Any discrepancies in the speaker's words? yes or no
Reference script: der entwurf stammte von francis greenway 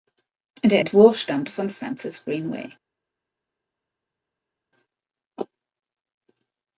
no